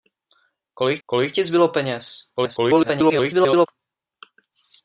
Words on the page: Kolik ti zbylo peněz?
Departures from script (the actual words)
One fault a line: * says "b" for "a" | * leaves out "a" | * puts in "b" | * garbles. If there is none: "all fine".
* puts in "kolik"
* garbles